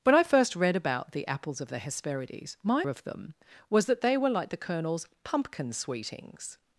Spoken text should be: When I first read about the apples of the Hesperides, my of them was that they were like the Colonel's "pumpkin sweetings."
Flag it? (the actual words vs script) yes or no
no